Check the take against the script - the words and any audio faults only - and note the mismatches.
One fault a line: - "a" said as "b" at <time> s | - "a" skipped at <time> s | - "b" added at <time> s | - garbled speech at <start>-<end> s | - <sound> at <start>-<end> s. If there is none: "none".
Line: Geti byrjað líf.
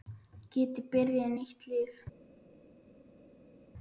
- "nýtt" added at 1.4 s